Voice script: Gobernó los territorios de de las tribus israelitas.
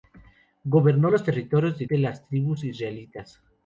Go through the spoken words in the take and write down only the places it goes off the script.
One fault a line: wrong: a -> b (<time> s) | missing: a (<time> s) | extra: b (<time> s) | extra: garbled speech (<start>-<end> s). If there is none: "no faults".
no faults